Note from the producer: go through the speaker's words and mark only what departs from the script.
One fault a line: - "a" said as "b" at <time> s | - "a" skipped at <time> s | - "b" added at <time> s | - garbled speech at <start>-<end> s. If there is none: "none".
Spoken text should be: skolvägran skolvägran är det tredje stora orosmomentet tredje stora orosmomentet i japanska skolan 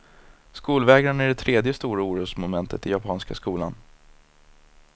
- "skolvägran" skipped at 1.2 s
- "tredje stora orosmomentet" skipped at 2.9 s